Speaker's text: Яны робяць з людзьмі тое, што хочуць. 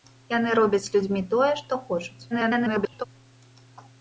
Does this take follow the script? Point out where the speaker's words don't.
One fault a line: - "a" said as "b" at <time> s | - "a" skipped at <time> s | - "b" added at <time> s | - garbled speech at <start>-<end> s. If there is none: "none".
- garbled speech at 2.3-3.0 s